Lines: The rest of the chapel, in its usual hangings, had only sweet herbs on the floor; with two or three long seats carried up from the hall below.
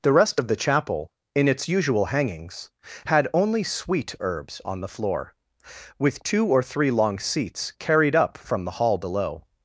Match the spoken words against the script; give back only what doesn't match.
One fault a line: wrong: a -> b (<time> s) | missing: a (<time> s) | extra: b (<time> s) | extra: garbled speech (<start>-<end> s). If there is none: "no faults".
no faults